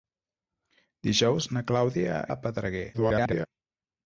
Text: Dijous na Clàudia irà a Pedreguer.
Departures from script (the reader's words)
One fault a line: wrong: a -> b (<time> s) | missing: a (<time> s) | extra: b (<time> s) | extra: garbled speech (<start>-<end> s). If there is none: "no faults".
missing: irà (2.1 s)
extra: garbled speech (2.9-3.5 s)